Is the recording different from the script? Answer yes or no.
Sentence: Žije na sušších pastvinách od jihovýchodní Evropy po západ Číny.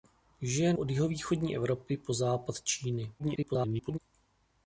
yes